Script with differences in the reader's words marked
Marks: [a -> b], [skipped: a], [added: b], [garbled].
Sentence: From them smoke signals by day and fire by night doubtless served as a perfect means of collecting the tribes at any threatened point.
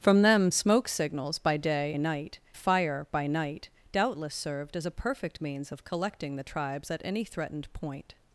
From them smoke signals by day [and -> night] fire by night doubtless served as a perfect means of collecting the tribes at any threatened point.